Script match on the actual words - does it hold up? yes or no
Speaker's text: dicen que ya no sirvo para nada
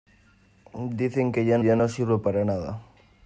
no